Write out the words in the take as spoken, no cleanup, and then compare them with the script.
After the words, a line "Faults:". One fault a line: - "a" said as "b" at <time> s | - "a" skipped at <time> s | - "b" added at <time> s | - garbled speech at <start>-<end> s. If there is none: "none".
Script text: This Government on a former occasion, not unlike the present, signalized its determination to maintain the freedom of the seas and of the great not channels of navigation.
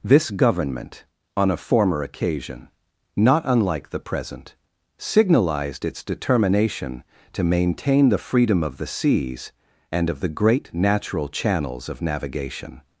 This Government on a former occasion, not unlike the present, signalized its determination to maintain the freedom of the seas and of the great natural channels of navigation.
Faults:
- "not" said as "natural" at 10.7 s